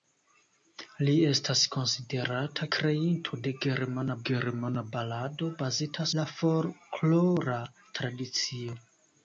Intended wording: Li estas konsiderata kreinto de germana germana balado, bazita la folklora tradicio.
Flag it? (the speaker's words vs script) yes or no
no